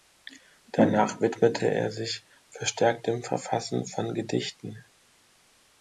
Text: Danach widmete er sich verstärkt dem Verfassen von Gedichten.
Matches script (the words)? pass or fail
pass